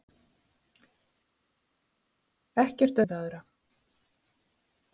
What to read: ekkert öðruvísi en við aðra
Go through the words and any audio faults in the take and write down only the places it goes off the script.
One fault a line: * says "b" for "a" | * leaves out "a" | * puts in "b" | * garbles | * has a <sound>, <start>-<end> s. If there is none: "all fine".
* leaves out "öðruvísi"